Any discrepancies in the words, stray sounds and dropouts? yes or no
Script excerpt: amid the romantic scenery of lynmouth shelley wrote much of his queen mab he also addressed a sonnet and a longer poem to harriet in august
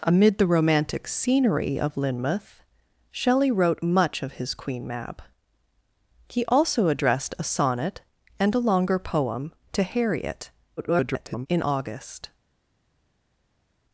yes